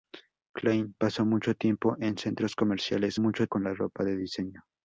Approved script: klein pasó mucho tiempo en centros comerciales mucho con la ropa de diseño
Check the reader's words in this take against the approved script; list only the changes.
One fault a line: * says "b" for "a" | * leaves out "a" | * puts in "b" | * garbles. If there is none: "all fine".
all fine